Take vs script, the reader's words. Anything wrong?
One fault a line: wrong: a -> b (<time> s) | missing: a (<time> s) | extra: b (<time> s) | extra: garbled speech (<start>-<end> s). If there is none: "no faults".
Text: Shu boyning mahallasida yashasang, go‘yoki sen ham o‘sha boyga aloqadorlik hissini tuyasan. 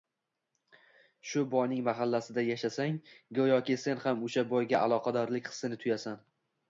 no faults